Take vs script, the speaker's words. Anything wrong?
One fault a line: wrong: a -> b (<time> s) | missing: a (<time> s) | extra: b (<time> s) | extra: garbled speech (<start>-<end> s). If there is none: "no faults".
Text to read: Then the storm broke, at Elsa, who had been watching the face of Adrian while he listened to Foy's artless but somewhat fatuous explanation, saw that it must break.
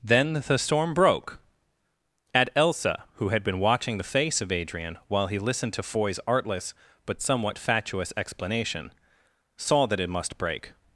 no faults